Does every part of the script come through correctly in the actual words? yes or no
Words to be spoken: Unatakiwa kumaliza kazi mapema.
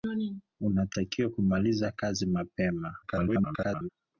no